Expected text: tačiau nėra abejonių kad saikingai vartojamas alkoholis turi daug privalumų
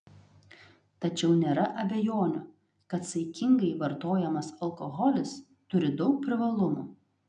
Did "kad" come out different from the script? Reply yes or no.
no